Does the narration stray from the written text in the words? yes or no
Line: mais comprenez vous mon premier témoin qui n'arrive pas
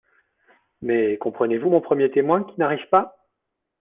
no